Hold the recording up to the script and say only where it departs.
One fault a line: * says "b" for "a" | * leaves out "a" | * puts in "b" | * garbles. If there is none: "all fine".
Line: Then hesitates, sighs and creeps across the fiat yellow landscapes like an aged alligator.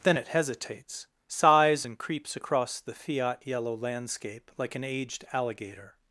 * puts in "it"
* says "landscape" for "landscapes"